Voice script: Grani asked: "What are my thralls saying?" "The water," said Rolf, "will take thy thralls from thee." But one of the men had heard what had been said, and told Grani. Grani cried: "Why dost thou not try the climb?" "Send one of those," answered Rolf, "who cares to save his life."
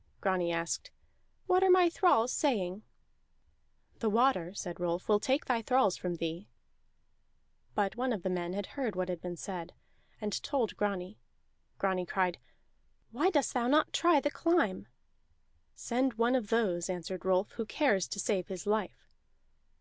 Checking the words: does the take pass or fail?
pass